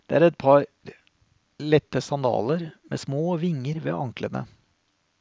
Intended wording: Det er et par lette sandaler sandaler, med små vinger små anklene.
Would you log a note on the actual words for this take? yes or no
yes